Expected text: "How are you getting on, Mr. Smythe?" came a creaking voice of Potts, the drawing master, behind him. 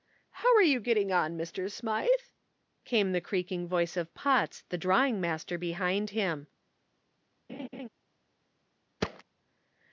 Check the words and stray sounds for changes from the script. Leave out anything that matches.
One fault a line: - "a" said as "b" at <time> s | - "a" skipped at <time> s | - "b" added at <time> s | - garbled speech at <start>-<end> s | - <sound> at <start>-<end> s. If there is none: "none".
- "a" said as "the" at 3.1 s
- laugh at 7.5-7.9 s
- thud at 9.0-9.2 s